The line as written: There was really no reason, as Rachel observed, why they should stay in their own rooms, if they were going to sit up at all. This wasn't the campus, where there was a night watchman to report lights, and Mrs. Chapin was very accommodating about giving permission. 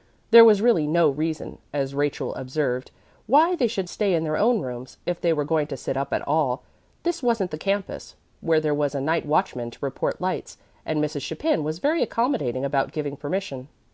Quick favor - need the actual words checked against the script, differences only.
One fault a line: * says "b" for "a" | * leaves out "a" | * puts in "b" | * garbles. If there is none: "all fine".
all fine